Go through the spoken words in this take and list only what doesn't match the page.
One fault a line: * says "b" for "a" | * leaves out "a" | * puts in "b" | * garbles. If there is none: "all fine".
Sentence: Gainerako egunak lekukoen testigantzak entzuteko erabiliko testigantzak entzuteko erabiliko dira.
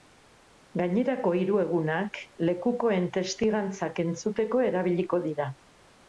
* puts in "hiru"
* leaves out "testigantzak entzuteko erabiliko"